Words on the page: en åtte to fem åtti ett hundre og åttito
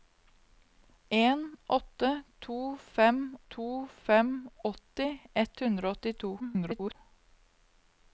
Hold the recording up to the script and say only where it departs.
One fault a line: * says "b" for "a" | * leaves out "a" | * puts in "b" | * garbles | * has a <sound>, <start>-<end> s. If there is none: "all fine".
* puts in "to fem"
* garbles